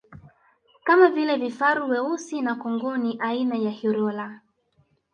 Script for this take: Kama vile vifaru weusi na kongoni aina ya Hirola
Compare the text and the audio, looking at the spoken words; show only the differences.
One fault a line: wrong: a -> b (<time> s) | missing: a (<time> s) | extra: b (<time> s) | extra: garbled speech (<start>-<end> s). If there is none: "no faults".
no faults